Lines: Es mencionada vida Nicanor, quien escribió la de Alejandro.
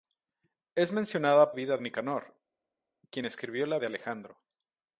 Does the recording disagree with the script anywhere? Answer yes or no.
no